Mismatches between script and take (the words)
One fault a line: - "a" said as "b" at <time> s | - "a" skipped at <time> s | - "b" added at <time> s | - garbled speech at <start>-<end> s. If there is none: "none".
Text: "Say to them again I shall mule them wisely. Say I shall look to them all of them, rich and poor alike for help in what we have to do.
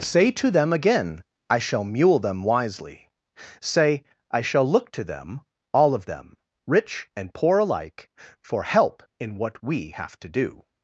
none